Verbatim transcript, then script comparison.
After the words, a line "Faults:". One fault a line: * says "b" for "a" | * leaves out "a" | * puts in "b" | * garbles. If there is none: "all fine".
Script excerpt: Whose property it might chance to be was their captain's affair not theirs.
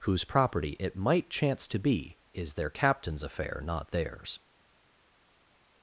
Whose property it might chance to be is their captain's affair not theirs.
Faults:
* says "is" for "was"